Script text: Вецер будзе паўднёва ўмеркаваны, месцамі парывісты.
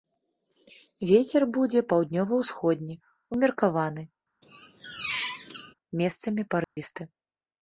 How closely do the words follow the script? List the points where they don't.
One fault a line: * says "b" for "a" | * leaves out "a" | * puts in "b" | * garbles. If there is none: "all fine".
* puts in "ўсходні"